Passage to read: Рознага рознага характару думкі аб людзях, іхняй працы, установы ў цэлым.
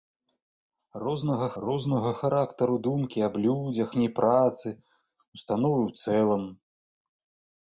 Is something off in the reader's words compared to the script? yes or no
no